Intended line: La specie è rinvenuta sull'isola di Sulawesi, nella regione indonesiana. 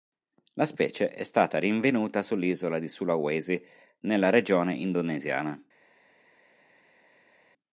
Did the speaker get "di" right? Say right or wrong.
right